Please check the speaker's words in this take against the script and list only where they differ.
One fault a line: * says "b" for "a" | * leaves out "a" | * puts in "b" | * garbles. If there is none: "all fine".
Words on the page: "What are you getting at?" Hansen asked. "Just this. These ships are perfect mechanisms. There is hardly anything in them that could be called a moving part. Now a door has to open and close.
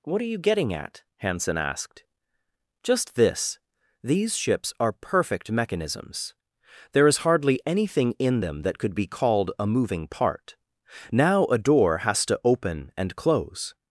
all fine